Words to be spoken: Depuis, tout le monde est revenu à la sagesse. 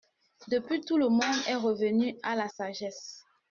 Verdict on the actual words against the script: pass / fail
pass